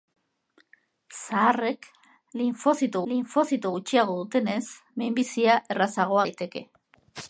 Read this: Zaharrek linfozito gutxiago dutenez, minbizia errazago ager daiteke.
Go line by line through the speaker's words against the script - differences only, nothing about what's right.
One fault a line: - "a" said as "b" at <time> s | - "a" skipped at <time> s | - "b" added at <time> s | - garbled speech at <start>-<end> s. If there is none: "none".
- "linfozito" added at 3.1 s
- "ager" skipped at 6.2 s